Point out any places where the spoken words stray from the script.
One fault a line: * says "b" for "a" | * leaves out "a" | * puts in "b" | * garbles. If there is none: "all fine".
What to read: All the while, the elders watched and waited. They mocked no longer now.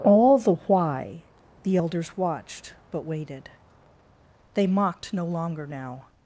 * says "why" for "while"
* says "but" for "and"